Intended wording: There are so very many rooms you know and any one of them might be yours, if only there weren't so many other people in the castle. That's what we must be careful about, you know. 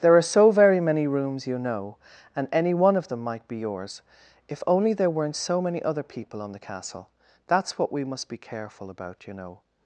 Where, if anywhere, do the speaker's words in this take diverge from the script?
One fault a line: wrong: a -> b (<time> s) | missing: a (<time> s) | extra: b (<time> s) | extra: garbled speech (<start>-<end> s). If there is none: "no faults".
wrong: in -> on (6.4 s)